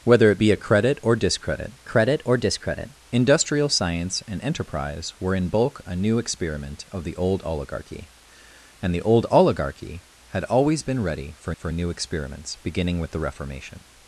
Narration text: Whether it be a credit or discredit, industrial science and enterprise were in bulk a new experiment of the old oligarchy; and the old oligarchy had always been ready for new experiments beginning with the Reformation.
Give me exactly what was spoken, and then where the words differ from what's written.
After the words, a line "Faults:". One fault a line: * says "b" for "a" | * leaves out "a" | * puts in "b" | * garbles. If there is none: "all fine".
Whether it be a credit or discredit credit or discredit, industrial science and enterprise were in bulk a new experiment of the old oligarchy; and the old oligarchy had always been ready for for new experiments beginning with the Reformation.
Faults:
* puts in "credit or discredit"
* puts in "for"